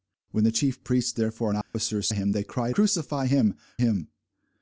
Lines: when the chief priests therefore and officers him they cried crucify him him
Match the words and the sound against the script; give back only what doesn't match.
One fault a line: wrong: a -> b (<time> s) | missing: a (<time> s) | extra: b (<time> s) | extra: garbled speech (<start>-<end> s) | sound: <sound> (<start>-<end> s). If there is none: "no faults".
sound: dropout (1.6-1.7 s)